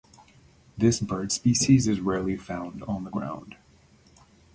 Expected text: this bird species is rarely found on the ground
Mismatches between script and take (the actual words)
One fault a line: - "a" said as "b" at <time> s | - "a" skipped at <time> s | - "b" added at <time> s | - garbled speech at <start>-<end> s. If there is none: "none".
none